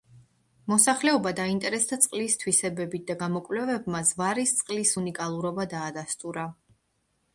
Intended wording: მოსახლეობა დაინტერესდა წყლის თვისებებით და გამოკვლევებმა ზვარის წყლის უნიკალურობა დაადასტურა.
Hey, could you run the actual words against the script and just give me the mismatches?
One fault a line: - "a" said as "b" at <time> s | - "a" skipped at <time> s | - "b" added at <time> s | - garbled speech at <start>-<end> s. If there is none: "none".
none